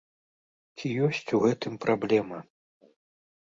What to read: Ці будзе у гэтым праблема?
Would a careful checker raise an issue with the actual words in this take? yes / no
yes